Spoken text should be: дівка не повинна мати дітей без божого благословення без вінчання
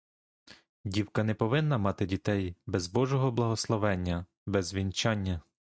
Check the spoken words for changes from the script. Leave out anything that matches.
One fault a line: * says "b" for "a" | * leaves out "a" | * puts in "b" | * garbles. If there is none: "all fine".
all fine